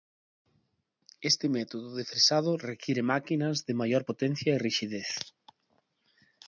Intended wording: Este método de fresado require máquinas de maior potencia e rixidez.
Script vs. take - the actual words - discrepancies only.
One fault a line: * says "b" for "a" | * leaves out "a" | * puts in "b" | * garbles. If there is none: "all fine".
all fine